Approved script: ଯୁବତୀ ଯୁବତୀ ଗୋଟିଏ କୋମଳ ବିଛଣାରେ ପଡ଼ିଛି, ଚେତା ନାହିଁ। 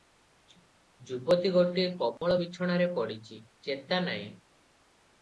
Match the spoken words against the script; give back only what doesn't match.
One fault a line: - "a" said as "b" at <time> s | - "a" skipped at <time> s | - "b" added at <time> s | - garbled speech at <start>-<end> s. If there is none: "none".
- "ଯୁବତୀ" skipped at 1.5 s